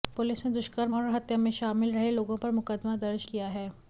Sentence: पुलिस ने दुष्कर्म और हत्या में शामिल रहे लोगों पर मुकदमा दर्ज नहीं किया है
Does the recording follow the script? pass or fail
fail